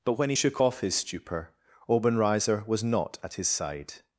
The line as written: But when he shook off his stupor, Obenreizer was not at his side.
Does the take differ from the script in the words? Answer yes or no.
no